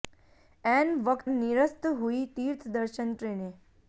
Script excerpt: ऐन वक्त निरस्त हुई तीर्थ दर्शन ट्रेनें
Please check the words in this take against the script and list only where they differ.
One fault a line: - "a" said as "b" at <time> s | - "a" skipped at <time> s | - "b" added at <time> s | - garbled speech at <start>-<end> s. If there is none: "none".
none